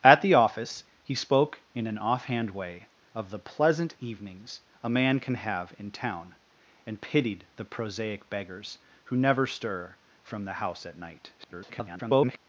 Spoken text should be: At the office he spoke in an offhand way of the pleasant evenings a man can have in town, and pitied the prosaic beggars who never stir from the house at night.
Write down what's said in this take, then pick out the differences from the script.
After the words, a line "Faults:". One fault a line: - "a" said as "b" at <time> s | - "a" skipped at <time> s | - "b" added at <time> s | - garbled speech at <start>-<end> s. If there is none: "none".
At the office he spoke in an offhand way of the pleasant evenings a man can have in town, and pitied the prosaic beggars who never stir from the house at night. [garbled]
Faults:
- garbled speech at 11.4-12.4 s